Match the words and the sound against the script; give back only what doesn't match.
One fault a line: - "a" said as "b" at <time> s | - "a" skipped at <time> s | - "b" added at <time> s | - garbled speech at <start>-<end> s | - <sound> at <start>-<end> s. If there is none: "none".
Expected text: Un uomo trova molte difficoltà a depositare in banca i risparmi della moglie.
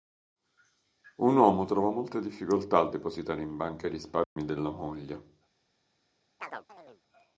- dropout at 4.2-4.4 s
- chirp at 6.4-7.0 s